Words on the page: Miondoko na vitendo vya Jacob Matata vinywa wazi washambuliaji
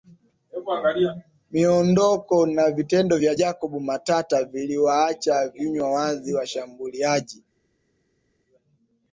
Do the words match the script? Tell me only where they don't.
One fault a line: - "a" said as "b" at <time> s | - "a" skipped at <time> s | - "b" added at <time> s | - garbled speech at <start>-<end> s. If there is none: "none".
- "viliwaacha" added at 4.4 s